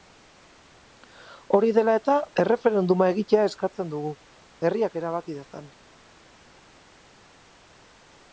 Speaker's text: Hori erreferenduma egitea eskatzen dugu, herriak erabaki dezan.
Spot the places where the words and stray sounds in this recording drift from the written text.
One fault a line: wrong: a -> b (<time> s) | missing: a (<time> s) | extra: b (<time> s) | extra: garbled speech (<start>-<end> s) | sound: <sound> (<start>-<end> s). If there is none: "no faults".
extra: dela eta (1.8 s)